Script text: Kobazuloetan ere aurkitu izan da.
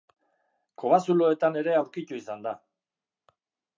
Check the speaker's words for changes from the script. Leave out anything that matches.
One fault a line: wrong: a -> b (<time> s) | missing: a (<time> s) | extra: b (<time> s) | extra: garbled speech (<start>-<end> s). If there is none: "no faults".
no faults